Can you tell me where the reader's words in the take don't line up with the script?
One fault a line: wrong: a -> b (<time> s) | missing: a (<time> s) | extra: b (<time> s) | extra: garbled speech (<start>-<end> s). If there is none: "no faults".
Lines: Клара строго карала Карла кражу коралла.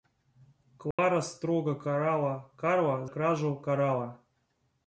no faults